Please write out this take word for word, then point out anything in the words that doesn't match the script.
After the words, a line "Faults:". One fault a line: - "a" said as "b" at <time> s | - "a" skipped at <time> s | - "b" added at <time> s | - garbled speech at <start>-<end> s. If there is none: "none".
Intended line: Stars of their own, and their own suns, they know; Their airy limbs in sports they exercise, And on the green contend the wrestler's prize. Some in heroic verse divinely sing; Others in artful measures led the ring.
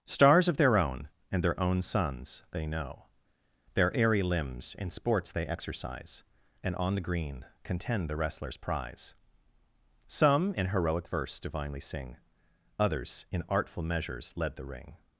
Stars of their own, and their own suns, they know; Their airy limbs in sports they exercise, And on the green contend the wrestler's prize. Some in heroic verse divinely sing; Others in artful measures led the ring.
Faults:
none